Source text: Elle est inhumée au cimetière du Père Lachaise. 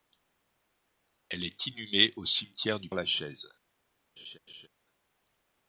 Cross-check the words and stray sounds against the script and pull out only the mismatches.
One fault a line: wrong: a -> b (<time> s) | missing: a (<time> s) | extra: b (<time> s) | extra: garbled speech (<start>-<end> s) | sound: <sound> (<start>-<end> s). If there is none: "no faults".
missing: Père (2.9 s)
sound: laugh (4.2-4.7 s)